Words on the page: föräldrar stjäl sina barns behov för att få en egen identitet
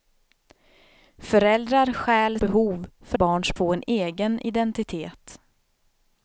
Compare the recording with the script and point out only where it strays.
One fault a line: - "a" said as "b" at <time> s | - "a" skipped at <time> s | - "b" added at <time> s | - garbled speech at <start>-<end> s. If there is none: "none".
- "sina barns" skipped at 2.4 s
- "att" said as "barns" at 3.1 s